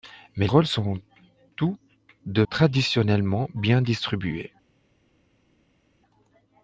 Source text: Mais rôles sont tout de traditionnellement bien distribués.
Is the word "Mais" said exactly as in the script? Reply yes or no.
yes